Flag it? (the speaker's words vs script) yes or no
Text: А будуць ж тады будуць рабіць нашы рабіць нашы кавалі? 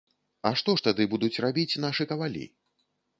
yes